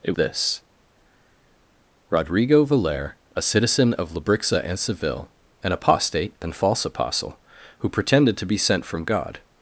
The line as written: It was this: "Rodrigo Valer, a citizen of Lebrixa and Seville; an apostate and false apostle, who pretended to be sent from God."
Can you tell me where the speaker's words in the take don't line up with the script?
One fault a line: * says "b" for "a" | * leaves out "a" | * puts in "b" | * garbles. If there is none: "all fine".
* leaves out "was"